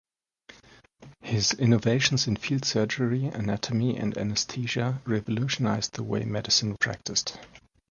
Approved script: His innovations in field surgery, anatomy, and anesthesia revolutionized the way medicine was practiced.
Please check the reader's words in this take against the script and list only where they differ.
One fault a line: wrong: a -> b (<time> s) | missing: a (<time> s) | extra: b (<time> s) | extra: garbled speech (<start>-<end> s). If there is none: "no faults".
missing: was (6.8 s)